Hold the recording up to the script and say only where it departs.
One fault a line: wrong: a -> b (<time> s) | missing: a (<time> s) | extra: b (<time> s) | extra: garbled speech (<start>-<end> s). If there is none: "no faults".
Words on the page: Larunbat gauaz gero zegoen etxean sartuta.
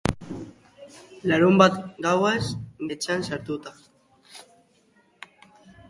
missing: gero zegoen (2.5 s)